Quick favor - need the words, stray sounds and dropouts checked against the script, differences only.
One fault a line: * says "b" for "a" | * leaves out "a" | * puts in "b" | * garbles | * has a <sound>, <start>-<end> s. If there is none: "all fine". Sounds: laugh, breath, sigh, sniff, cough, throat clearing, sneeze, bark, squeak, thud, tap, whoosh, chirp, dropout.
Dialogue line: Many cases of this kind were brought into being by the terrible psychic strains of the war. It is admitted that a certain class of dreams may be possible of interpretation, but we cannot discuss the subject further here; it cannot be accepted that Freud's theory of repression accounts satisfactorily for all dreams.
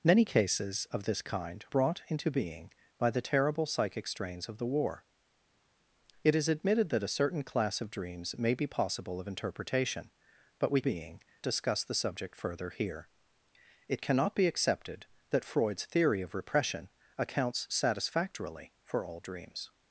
* leaves out "were"
* says "being" for "cannot"